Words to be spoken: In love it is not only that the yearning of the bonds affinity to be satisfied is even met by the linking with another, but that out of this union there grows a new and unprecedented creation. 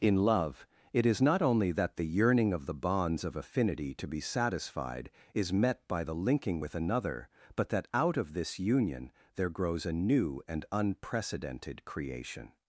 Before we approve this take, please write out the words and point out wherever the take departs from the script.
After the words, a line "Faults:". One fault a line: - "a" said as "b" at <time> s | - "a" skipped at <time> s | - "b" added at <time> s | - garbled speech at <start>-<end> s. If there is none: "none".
In love it is not only that the yearning of the bonds of affinity to be satisfied is met by the linking with another, but that out of this union there grows a new and unprecedented creation.
Faults:
- "of" added at 3.2 s
- "even" skipped at 5.5 s